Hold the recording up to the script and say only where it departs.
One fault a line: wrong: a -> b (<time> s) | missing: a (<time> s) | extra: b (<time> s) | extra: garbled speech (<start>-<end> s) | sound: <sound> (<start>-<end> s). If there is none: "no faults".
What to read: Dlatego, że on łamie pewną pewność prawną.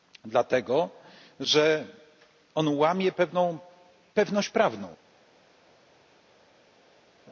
no faults